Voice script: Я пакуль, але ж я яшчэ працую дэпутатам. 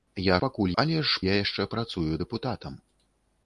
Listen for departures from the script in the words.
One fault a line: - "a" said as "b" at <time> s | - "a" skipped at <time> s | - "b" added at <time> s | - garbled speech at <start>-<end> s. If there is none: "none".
none